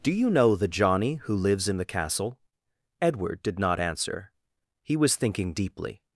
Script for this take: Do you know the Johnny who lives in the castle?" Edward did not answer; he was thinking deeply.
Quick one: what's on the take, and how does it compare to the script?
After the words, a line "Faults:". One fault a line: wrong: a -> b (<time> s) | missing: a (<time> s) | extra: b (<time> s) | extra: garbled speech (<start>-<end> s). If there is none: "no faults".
Do you know the Johnny who lives in the castle?" Edward did not answer; he was thinking deeply.
Faults:
no faults